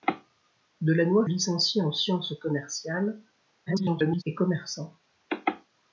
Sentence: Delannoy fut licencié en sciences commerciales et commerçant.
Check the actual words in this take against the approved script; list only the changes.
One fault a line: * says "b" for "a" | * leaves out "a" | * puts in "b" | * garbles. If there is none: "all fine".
* leaves out "fut"
* garbles